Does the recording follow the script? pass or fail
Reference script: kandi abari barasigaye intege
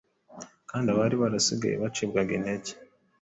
fail